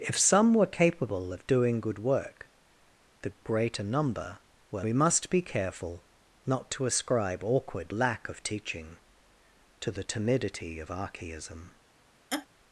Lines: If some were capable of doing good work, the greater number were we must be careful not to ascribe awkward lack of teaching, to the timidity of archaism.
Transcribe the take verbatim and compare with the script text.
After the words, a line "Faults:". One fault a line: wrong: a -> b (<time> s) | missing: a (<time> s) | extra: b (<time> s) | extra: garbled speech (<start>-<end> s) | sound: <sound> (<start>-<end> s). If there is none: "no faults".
If some were capable of doing good work, the greater number were we must be careful not to ascribe awkward lack of teaching, to the timidity of archaism.
Faults:
sound: laugh (12.3-12.5 s)